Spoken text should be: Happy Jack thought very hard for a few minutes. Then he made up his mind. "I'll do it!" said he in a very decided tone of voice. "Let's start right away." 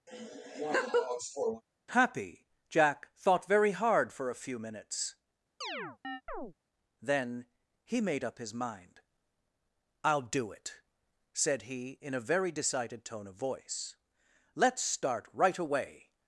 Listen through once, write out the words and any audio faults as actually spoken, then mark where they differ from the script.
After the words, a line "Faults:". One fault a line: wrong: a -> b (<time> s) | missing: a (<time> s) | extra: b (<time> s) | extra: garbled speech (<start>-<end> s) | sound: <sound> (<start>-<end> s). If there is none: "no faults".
Happy Jack thought very hard for a few minutes. Then he made up his mind. "I'll do it!" said he in a very decided tone of voice. "Let's start right away."
Faults:
sound: laugh (0.1-1.6 s)
sound: chirp (5.6-6.5 s)